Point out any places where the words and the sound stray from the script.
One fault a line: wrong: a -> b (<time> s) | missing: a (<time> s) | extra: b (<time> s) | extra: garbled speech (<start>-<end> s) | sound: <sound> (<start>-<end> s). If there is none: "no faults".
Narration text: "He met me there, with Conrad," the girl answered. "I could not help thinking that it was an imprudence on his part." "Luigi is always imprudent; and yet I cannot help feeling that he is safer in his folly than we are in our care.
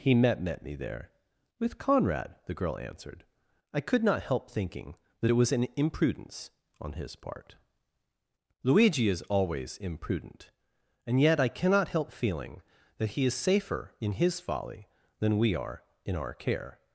extra: met (0.4 s)